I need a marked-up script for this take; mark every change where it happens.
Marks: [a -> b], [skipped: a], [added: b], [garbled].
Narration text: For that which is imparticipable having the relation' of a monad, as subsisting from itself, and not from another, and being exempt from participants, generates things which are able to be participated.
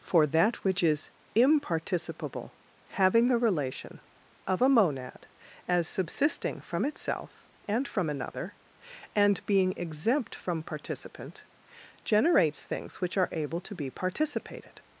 For that which is imparticipable having the relation' of a monad, as subsisting from itself, and [skipped: not] from another, and being exempt from [participants, -> participant] generates things which are able to be participated.